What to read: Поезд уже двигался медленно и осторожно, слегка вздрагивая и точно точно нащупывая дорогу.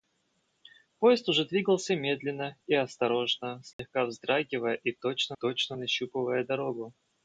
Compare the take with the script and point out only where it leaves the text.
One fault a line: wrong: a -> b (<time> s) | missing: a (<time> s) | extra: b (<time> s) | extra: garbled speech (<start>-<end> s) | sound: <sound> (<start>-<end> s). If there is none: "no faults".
sound: dropout (3.7-3.8 s)